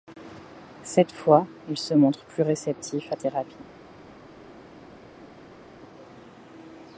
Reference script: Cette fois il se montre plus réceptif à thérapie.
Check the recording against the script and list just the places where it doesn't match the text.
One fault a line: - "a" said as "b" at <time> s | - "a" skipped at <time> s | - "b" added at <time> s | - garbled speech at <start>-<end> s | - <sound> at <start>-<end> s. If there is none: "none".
none